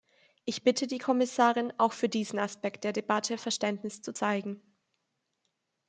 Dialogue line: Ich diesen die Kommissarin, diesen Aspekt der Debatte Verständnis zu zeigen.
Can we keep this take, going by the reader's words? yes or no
no